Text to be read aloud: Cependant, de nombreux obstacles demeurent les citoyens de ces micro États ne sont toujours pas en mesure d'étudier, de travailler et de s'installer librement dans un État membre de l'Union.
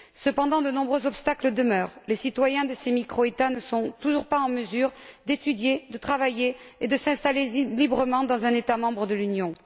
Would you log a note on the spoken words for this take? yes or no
no